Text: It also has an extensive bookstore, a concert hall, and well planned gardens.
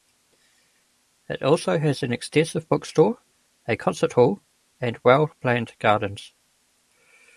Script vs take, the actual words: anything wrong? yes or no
no